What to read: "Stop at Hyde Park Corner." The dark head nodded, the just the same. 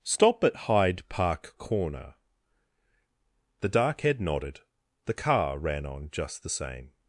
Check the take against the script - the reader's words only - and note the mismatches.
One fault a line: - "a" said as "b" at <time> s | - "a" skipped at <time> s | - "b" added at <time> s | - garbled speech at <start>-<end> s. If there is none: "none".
- "car ran on" added at 5.1 s